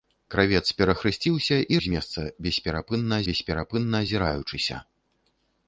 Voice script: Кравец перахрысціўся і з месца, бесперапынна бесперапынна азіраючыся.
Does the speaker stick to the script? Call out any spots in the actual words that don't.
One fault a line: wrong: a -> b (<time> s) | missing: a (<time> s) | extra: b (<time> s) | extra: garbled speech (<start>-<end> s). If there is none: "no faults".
no faults